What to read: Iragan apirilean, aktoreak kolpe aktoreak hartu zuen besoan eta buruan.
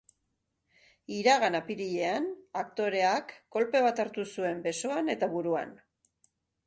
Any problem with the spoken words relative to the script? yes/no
yes